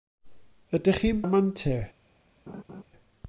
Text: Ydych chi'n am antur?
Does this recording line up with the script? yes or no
yes